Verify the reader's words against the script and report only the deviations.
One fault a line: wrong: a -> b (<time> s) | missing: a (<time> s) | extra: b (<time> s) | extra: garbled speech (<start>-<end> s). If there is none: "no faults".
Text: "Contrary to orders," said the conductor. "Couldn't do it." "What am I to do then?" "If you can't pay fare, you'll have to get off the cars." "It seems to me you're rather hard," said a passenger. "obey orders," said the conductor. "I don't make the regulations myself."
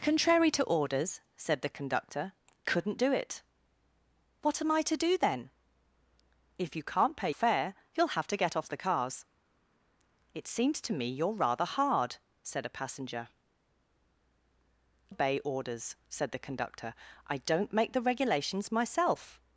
no faults